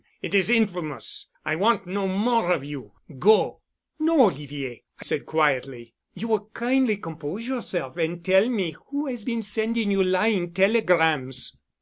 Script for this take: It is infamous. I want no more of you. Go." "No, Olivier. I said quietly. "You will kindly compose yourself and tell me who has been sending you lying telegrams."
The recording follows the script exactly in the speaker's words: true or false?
true